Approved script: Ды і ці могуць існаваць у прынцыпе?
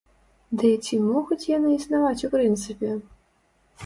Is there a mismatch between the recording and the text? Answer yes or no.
yes